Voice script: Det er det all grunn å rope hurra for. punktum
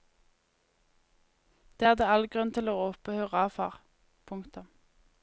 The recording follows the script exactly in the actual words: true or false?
false